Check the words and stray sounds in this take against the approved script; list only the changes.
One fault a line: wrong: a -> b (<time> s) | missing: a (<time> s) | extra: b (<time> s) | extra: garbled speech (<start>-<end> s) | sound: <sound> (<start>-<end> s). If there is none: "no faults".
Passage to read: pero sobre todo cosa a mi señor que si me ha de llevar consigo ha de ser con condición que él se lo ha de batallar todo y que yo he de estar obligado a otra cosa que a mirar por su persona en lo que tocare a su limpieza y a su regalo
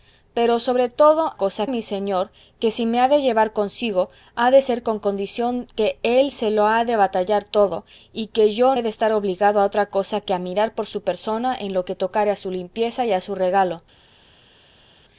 no faults